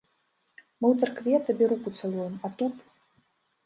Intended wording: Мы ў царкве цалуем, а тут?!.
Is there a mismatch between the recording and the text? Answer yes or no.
yes